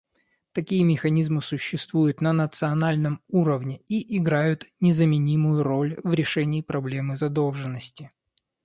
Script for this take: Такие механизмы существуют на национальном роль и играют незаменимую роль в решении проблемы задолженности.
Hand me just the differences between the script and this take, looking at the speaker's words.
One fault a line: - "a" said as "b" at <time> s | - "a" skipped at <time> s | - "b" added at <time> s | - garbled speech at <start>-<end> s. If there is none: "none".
- "роль" said as "уровне" at 3.3 s